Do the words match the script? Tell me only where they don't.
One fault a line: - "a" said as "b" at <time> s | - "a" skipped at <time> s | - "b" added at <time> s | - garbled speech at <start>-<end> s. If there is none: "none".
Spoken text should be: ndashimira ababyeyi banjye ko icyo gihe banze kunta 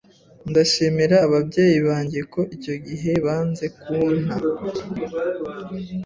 none